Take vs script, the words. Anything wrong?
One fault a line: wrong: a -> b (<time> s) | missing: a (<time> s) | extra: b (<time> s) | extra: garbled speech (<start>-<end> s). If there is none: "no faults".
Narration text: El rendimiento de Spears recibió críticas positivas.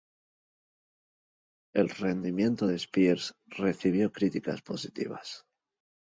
no faults